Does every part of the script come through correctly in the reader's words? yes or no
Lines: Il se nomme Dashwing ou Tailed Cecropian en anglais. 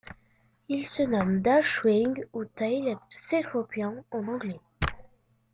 yes